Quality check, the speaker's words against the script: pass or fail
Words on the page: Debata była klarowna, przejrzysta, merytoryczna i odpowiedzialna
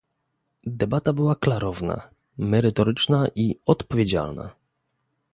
fail